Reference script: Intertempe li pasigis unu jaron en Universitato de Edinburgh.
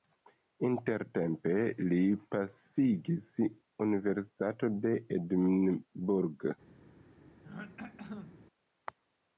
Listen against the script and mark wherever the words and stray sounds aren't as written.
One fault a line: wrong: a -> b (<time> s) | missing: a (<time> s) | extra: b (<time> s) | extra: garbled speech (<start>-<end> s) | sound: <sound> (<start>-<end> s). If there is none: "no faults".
missing: unu jaron en (3.3 s)
sound: throat clearing (7.4-8.5 s)